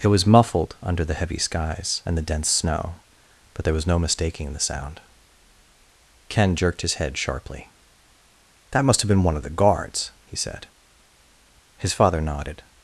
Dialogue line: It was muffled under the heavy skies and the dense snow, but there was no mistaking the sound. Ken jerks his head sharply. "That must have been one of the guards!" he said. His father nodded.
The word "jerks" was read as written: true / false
false